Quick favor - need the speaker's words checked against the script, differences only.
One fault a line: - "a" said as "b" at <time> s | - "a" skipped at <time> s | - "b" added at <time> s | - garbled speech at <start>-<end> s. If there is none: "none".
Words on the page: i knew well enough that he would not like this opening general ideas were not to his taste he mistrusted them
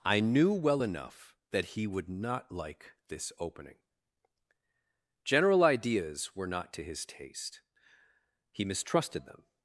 none